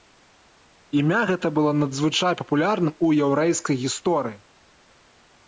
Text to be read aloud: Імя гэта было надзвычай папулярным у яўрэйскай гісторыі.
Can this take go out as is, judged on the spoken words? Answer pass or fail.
pass